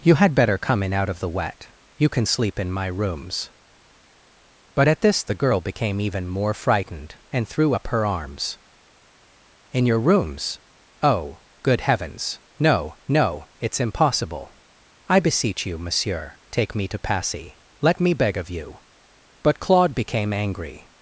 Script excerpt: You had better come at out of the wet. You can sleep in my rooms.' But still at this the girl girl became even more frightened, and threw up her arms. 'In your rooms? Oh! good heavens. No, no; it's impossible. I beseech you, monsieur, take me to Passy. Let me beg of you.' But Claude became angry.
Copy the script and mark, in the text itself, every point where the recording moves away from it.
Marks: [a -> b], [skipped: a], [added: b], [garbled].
You had better come [at -> in] out of the wet. You can sleep in my rooms.' But [skipped: still] at this the girl [skipped: girl] became even more frightened, and threw up her arms. 'In your rooms? Oh! good heavens. No, no; it's impossible. I beseech you, monsieur, take me to Passy. Let me beg of you.' But Claude became angry.